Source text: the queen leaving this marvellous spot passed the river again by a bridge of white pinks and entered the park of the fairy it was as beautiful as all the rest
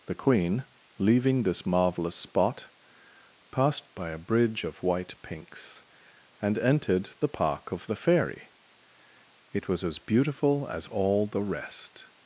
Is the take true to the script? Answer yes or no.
no